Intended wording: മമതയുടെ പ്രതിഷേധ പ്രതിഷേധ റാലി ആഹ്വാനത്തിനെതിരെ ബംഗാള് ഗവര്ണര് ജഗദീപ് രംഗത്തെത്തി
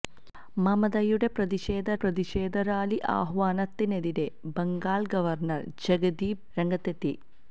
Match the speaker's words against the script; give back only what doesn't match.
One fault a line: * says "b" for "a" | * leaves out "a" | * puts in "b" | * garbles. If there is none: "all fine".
all fine